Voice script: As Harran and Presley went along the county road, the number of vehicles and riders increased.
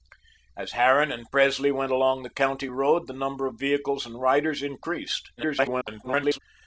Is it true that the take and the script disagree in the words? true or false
true